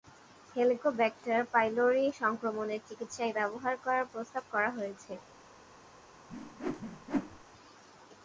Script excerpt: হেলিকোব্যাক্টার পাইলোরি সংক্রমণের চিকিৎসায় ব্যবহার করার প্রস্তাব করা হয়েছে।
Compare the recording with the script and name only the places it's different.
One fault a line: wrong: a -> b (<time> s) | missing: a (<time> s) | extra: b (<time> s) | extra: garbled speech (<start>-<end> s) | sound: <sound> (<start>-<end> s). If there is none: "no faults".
sound: whoosh (6.3-7.4 s)